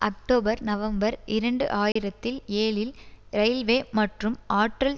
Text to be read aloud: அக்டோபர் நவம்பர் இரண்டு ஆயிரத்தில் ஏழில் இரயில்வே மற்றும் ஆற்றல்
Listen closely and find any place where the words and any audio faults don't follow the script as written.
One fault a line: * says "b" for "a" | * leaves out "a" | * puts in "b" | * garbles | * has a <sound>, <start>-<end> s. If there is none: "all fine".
* has a dropout, 1.9-2.0 s